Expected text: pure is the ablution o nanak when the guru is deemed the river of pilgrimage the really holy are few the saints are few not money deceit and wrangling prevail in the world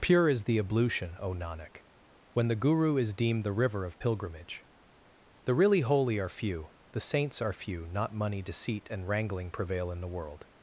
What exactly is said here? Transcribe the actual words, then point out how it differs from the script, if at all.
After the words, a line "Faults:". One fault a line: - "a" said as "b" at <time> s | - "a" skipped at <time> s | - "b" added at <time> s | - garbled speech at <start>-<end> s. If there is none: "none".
pure is the ablution o nanak when the guru is deemed the river of pilgrimage the really holy are few the saints are few not money deceit and wrangling prevail in the world
Faults:
none